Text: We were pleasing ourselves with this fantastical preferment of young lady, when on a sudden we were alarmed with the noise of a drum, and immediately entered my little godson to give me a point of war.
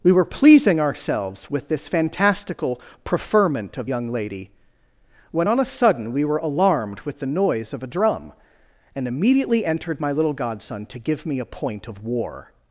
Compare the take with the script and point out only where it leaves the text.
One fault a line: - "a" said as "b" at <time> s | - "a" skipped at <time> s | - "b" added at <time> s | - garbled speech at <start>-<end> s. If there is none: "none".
none